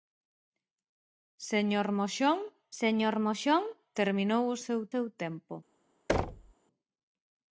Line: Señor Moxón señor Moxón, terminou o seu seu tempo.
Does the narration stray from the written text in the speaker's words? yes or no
no